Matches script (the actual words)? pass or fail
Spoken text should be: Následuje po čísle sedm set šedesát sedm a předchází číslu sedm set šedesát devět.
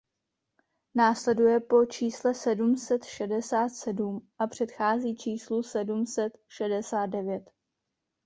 pass